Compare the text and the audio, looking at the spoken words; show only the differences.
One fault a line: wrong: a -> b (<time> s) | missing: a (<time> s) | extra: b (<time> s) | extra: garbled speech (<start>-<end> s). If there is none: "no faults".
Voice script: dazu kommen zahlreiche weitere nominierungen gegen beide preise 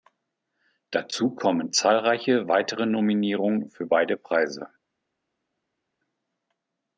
wrong: gegen -> für (3.7 s)